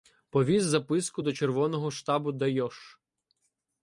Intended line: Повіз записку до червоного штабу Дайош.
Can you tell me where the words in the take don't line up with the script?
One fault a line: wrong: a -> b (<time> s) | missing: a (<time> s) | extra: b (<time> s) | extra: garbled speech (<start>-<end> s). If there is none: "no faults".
no faults